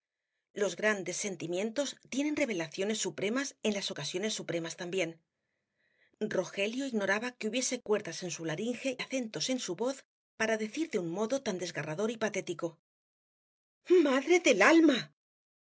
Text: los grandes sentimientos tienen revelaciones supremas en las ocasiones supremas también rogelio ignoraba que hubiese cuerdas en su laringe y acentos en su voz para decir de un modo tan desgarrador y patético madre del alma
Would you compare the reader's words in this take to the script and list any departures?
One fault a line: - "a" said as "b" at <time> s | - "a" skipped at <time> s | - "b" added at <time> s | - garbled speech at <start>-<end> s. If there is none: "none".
- "y" skipped at 9.0 s